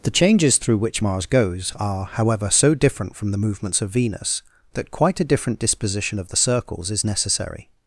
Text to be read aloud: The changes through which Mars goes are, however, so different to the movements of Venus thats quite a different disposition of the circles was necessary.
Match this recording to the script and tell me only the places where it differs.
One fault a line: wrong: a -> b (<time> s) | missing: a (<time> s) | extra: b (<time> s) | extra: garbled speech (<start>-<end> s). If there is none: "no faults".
wrong: to -> from (3.2 s)
wrong: thats -> that (4.7 s)
wrong: was -> is (6.9 s)